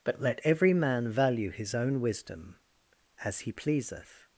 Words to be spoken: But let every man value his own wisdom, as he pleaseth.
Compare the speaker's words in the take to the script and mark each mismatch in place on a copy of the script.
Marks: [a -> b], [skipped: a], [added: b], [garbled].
But let every man value his own wisdom, as he pleaseth.